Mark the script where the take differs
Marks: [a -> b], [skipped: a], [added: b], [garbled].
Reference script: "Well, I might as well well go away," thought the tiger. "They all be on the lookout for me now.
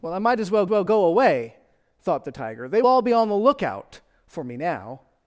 "Well, I might as well well go away," thought the tiger. "They all be on the lookout for me now.